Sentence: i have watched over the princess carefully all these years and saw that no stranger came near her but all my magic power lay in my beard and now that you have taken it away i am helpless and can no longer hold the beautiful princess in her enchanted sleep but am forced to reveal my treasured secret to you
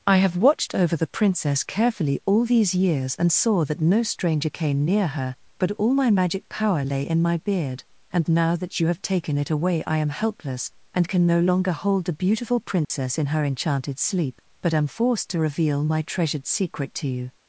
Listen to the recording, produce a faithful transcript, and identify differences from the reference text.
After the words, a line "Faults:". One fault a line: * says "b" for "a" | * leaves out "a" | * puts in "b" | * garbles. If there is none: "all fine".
i have watched over the princess carefully all these years and saw that no stranger came near her but all my magic power lay in my beard and now that you have taken it away i am helpless and can no longer hold the beautiful princess in her enchanted sleep but am forced to reveal my treasured secret to you
Faults:
all fine